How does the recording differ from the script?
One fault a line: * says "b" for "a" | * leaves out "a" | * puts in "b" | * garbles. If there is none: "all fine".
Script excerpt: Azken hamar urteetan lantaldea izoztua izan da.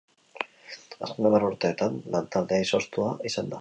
all fine